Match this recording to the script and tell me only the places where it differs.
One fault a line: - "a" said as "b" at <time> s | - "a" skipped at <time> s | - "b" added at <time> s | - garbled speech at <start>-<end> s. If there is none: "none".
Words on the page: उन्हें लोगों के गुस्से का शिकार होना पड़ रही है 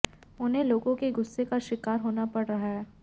- "रही" said as "रहा" at 2.4 s